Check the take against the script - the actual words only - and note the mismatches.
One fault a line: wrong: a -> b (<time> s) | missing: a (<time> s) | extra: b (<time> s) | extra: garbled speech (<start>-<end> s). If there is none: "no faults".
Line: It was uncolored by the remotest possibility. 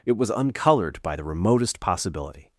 no faults